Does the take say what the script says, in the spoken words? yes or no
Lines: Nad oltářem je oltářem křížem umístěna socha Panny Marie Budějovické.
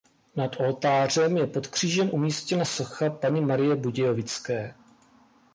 no